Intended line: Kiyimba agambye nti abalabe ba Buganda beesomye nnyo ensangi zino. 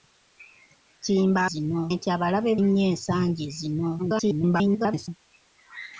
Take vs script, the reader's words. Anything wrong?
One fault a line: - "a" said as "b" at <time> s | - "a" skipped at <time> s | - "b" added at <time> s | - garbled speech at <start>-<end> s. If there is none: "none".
- "agambye" said as "zino" at 1.5 s
- "ba Buganda beesomye" skipped at 2.5 s
- garbled speech at 4.0-5.1 s